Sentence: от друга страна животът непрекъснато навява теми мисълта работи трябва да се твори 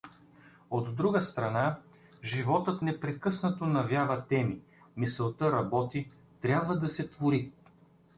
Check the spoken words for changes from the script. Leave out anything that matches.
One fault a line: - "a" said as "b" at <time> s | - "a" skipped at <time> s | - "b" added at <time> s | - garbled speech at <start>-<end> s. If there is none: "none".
none